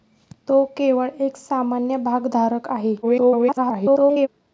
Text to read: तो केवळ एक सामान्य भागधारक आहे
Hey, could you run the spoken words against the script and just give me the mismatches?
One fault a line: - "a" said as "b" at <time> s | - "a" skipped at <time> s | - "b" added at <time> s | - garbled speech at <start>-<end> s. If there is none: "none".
- garbled speech at 3.0-4.3 s